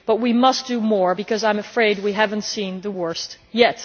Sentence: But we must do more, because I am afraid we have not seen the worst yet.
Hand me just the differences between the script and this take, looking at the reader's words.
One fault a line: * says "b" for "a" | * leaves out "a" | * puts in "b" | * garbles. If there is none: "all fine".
all fine